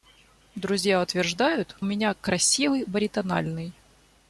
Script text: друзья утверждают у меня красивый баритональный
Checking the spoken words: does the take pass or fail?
pass